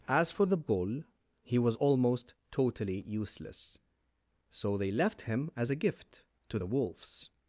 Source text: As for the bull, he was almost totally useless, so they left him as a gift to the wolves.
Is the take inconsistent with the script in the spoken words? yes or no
no